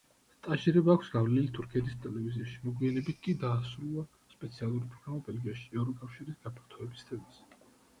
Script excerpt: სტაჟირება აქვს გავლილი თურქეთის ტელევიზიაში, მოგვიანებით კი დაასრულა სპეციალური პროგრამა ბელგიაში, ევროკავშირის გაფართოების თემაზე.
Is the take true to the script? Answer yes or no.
yes